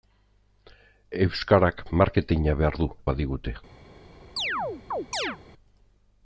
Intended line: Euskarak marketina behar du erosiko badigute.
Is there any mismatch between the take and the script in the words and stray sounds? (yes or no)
yes